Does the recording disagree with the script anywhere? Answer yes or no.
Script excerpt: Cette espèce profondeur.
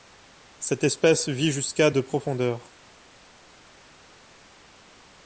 yes